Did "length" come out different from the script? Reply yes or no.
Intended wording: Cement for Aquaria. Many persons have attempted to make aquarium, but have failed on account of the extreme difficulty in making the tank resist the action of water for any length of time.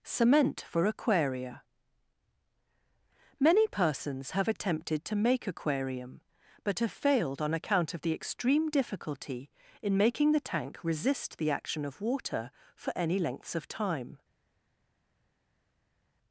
yes